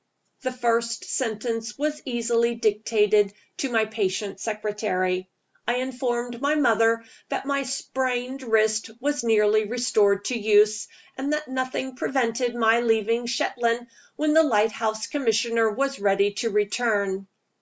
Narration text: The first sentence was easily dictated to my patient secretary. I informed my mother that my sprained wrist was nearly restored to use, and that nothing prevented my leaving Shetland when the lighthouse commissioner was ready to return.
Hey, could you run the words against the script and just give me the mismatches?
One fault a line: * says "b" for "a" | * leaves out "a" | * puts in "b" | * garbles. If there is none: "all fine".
all fine